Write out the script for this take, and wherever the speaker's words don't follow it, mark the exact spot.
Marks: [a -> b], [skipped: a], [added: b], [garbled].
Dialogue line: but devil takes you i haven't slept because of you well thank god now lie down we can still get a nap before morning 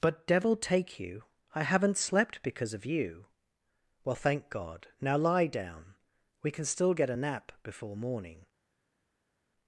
but devil [takes -> take] you i haven't slept because of you well thank god now lie down we can still get a nap before morning